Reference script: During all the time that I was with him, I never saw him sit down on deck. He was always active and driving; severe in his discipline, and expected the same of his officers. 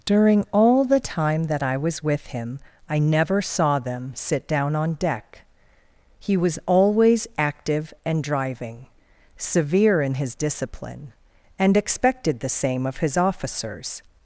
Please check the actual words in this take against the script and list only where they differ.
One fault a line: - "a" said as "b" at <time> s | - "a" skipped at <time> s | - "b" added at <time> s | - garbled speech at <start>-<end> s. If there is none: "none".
- "him" said as "them" at 3.8 s